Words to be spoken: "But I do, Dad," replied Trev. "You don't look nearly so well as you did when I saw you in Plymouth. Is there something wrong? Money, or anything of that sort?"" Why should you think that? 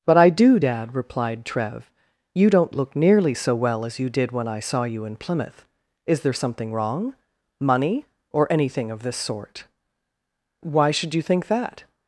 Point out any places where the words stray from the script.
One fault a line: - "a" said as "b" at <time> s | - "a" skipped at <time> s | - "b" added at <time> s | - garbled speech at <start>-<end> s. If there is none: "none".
- "that" said as "this" at 9.0 s